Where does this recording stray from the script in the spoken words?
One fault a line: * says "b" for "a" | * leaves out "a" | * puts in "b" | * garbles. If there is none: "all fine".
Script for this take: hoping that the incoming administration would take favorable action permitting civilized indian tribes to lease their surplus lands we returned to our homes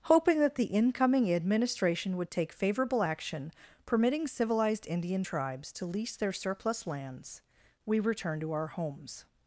all fine